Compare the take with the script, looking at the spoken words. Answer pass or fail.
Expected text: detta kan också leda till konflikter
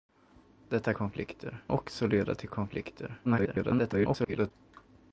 fail